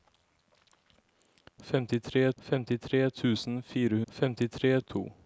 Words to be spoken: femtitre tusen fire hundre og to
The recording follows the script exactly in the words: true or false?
false